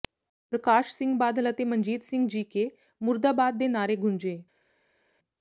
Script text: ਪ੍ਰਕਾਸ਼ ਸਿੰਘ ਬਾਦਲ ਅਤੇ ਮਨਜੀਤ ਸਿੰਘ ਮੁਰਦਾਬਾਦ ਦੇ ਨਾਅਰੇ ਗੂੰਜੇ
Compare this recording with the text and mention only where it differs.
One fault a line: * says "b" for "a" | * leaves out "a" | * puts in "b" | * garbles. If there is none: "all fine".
* puts in "ਜੀਕੇ"